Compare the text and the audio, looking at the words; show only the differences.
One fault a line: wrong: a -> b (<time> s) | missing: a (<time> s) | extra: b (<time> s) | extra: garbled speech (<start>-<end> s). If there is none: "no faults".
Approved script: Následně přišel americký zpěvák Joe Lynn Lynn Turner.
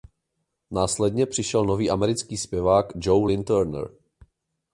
extra: nový (1.6 s)
missing: Lynn (3.4 s)